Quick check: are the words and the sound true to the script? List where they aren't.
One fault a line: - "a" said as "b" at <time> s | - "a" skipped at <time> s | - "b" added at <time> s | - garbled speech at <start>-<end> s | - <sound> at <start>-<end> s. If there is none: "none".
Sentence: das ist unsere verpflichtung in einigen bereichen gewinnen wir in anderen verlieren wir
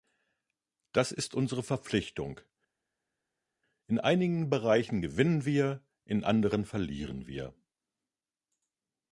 none